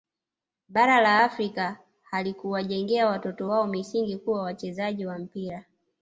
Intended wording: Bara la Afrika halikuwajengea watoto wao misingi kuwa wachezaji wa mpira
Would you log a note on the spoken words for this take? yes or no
no